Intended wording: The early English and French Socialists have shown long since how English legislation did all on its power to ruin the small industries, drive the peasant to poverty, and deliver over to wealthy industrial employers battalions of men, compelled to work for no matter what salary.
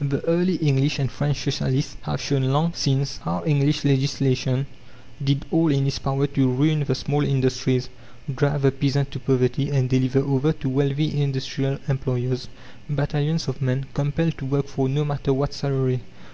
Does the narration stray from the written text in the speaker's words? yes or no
yes